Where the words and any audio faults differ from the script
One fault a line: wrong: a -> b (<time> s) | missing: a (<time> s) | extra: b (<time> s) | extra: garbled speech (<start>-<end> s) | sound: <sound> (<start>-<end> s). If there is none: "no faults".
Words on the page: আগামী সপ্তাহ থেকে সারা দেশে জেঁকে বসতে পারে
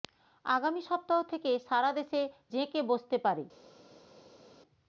no faults